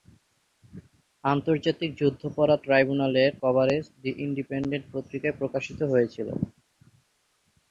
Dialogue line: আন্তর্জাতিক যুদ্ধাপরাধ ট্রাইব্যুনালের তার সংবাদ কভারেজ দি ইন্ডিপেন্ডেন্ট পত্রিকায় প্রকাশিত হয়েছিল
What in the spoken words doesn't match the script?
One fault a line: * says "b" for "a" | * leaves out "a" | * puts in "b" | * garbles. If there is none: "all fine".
* leaves out "তার সংবাদ"